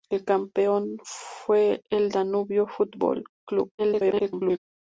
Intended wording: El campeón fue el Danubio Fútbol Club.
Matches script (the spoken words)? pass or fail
fail